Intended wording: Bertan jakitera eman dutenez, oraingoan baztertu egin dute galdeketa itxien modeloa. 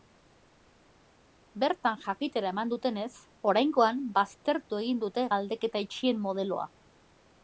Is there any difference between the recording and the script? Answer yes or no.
no